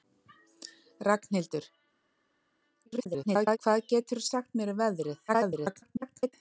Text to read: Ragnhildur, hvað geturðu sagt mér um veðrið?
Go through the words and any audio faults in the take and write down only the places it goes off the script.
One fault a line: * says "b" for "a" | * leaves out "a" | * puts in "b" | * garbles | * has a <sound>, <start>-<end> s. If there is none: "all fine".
* garbles
* garbles